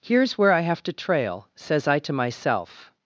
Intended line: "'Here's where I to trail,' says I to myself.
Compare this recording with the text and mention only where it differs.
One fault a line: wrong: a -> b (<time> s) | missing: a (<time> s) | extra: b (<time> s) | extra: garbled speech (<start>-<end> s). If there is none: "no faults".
extra: have (0.6 s)